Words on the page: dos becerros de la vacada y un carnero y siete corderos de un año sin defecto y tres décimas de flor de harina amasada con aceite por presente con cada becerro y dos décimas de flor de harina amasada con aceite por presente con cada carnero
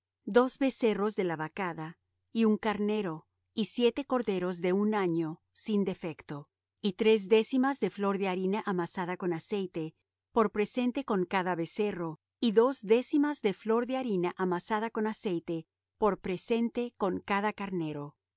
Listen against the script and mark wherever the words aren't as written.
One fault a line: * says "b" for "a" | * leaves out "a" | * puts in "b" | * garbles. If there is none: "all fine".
all fine